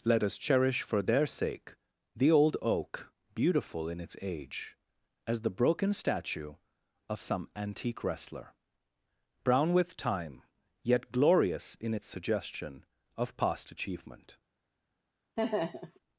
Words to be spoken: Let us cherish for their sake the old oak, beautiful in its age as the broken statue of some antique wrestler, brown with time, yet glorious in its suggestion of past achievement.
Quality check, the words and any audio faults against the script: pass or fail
fail